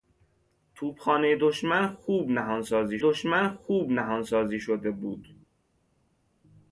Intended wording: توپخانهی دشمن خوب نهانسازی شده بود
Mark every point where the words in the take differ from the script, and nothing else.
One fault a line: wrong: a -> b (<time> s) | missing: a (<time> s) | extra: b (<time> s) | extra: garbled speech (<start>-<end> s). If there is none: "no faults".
extra: دشمن خوب نهانسازی (3.0 s)